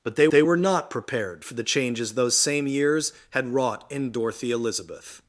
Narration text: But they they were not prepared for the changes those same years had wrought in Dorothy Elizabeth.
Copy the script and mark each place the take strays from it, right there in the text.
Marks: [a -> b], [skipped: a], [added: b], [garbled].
But they they were not prepared for the changes those same years had wrought in Dorothy Elizabeth.